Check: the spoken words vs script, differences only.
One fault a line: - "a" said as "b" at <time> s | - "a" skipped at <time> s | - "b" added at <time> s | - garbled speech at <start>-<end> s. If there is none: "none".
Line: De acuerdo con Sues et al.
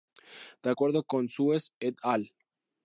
none